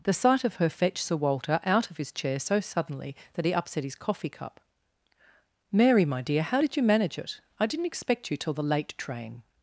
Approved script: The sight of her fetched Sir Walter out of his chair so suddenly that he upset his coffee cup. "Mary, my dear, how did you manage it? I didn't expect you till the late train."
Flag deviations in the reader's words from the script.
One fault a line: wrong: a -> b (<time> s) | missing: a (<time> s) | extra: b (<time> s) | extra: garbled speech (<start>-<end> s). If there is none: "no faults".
no faults